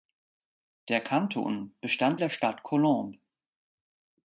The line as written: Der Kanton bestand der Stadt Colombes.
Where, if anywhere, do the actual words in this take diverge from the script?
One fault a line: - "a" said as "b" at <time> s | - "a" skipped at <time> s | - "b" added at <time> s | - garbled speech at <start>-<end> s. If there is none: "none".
none